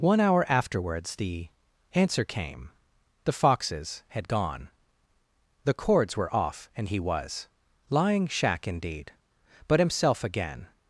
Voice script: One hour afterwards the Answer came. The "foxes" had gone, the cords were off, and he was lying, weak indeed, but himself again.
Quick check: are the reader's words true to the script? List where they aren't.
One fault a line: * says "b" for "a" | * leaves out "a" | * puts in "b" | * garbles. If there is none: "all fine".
* says "shack" for "weak"